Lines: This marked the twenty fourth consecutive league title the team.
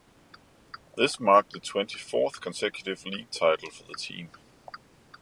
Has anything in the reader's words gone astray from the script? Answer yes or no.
yes